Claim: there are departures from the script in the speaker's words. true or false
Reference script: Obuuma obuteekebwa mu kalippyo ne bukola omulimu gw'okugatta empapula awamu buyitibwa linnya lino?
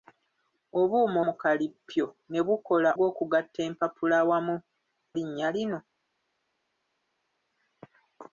true